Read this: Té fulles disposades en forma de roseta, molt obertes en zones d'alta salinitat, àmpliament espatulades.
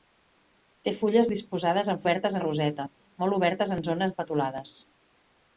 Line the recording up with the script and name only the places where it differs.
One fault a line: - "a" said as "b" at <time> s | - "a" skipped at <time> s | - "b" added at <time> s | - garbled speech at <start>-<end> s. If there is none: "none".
- "forma" said as "obertes" at 2.0 s
- "d'alta salinitat àmpliament" skipped at 4.2 s